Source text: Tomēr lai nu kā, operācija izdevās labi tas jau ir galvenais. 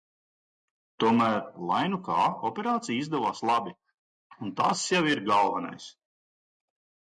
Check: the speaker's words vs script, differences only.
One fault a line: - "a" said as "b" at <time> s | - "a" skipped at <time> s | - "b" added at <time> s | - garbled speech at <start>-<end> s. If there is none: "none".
- "un" added at 4.4 s